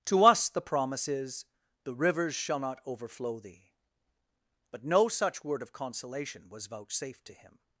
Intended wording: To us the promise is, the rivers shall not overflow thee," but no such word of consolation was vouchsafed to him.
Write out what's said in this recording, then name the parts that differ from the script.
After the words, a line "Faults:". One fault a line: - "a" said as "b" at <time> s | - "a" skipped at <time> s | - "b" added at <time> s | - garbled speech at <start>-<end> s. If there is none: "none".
To us the promise is, the rivers shall not overflow thee," but no such word of consolation was vouchsafed to him.
Faults:
none